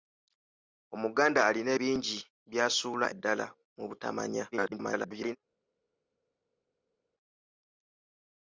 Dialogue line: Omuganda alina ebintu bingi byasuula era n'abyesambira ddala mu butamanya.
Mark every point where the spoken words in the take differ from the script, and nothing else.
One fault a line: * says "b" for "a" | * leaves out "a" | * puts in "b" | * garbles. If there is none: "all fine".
* leaves out "ebintu"
* leaves out "era n'abyesambira"
* garbles